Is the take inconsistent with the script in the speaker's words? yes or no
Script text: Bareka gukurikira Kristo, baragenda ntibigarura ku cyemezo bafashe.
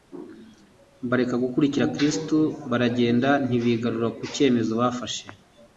no